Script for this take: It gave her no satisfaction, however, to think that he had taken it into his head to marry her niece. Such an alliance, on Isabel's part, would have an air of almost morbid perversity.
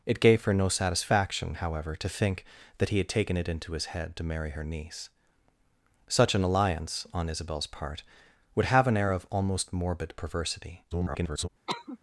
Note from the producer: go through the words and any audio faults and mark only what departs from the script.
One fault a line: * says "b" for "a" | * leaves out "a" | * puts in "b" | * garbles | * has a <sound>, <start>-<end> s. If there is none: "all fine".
* garbles
* has a cough, 11.7-12.0 s